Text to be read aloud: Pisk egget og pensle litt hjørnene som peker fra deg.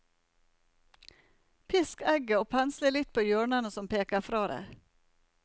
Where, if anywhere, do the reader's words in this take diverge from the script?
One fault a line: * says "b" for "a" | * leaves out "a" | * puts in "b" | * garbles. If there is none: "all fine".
* puts in "på"